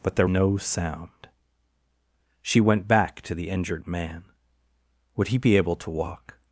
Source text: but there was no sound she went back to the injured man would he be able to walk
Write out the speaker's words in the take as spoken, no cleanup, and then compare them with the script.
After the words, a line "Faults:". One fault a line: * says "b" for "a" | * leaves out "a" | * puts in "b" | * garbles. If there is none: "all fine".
but there no sound she went back to the injured man would he be able to walk
Faults:
* leaves out "was"